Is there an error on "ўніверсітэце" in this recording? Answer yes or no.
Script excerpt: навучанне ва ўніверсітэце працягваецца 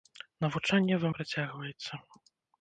yes